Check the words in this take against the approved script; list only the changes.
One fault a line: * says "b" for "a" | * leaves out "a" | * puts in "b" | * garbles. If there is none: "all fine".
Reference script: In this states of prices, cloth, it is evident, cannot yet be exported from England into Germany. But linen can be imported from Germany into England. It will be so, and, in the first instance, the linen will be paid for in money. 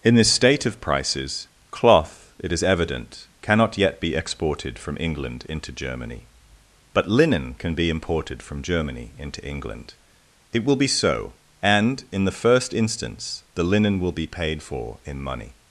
* says "state" for "states"